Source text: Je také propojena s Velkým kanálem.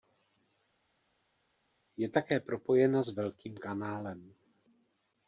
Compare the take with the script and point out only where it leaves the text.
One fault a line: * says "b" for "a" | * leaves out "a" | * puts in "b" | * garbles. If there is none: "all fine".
all fine